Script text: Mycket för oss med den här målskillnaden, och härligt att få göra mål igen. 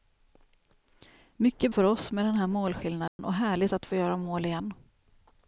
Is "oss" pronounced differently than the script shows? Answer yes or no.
no